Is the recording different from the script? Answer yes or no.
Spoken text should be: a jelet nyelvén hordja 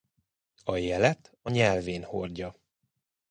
yes